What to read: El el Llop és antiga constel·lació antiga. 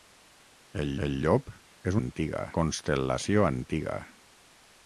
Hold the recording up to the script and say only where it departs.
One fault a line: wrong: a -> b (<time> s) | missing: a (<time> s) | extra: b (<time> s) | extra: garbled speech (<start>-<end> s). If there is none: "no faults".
no faults